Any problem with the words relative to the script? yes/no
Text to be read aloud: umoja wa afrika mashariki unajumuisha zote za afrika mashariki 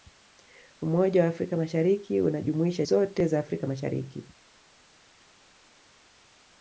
no